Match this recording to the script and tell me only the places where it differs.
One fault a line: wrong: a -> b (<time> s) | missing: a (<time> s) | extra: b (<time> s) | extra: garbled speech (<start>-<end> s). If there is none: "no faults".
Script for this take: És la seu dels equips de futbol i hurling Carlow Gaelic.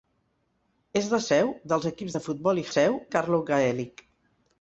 wrong: hurling -> seu (2.7 s)